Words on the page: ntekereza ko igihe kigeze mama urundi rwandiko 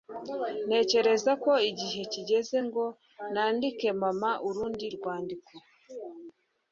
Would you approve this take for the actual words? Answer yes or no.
no